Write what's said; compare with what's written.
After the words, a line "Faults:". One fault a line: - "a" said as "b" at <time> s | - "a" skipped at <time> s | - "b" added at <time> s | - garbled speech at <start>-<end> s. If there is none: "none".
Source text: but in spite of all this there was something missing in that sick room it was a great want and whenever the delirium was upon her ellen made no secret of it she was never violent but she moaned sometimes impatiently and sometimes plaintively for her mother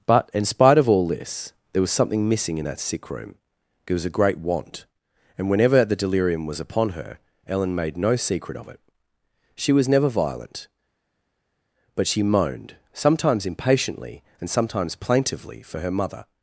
but in spite of all this there was something missing in that sick room it was a great want and whenever the delirium was upon her ellen made no secret of it she was never violent but she moaned sometimes impatiently and sometimes plaintively for her mother
Faults:
none